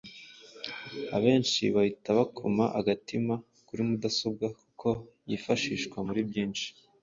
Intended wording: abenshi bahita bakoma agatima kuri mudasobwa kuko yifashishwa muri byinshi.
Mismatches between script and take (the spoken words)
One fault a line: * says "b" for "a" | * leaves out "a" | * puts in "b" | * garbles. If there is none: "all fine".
all fine